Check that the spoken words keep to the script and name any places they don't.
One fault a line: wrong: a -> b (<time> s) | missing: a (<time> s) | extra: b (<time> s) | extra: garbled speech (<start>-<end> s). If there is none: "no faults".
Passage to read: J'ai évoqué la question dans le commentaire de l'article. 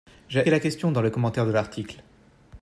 missing: évoqué (0.5 s)